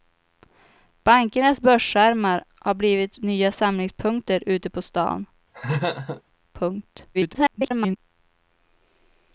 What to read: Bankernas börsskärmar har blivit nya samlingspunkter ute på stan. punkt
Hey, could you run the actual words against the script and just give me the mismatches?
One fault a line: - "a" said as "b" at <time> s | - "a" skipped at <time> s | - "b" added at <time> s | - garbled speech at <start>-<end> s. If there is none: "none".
- garbled speech at 7.1-8.0 s